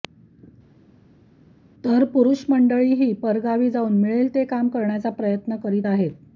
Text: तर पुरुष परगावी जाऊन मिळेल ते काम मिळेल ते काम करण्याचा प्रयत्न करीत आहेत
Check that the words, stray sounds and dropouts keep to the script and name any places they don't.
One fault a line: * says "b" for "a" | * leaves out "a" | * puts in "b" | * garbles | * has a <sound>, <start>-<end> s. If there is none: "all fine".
* puts in "मंडळीही"
* leaves out "मिळेल ते काम"